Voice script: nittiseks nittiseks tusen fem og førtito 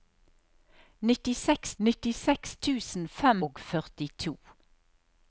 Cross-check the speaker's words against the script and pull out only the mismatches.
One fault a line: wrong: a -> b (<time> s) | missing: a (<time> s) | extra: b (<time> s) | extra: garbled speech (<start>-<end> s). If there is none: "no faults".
no faults